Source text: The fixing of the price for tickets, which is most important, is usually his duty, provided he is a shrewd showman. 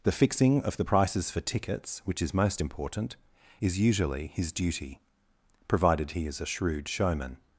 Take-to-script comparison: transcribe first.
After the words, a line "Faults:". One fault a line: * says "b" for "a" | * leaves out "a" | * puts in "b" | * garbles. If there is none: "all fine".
The fixing of the prices for tickets, which is most important, is usually his duty, provided he is a shrewd showman.
Faults:
* says "prices" for "price"